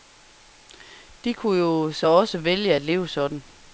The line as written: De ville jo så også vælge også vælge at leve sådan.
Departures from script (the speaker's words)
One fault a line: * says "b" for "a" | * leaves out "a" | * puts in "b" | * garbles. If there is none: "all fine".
* says "kunne" for "ville"
* leaves out "også vælge"